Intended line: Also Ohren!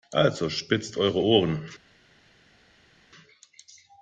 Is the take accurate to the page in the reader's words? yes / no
no